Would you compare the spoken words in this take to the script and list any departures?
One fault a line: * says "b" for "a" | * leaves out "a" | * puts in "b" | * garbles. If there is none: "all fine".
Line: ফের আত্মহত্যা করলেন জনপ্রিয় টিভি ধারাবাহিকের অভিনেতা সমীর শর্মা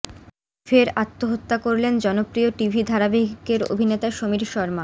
all fine